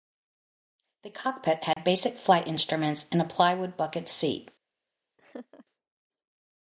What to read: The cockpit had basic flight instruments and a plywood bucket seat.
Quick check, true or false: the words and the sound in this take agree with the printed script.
false